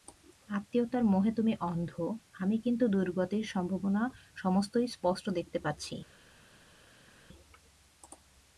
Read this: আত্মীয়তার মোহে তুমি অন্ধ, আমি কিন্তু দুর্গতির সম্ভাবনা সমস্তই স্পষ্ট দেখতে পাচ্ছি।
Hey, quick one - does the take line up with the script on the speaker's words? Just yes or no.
yes